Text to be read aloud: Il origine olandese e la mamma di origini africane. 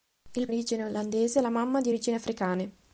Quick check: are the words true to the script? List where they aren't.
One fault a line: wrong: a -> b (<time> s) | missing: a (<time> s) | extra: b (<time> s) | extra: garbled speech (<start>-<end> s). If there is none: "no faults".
no faults